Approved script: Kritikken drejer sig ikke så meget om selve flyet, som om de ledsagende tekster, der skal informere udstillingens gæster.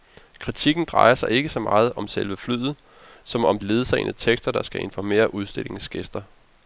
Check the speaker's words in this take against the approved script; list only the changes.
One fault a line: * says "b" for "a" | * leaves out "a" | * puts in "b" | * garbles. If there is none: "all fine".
* leaves out "de"